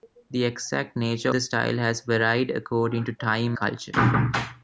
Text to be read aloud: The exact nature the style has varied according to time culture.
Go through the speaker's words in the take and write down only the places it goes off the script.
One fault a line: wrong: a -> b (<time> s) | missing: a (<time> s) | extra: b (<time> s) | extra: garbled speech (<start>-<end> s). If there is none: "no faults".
no faults